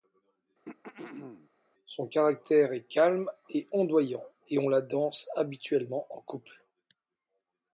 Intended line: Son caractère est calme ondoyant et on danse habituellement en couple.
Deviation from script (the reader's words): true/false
true